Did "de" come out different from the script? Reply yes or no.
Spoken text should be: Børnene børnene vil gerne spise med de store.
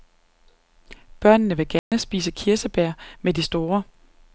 no